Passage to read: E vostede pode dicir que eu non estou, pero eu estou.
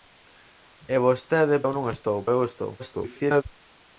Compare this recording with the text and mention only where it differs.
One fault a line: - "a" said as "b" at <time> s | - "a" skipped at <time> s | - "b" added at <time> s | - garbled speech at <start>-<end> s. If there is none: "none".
- "pode dicir que" skipped at 1.6 s
- "pero" skipped at 2.2 s
- garbled speech at 2.8-3.4 s